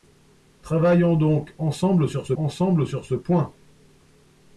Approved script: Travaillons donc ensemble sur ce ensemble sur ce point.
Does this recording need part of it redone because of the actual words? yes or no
no